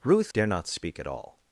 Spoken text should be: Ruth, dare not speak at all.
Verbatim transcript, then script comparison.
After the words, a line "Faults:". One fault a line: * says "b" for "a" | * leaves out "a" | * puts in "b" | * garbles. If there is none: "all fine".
Ruth, dare not speak at all.
Faults:
all fine